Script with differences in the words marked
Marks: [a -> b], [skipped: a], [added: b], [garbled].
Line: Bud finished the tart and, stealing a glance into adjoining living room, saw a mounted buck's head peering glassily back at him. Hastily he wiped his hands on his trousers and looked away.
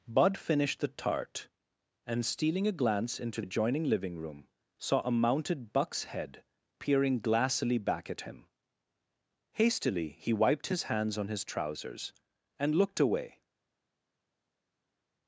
Bud finished the tart and, stealing a glance into adjoining living room, saw a mounted buck's head peering glassily back at him. Hastily he wiped his hands on his trousers and looked away.